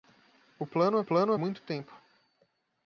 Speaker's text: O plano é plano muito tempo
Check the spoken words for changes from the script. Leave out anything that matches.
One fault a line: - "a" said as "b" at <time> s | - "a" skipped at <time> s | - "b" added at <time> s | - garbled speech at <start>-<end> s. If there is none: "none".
none